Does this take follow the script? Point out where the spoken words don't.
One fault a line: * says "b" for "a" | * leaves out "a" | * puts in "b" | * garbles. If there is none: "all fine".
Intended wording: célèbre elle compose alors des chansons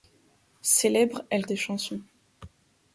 * leaves out "compose alors"